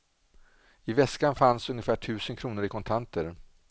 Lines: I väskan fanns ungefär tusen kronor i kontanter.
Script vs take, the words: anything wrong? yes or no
no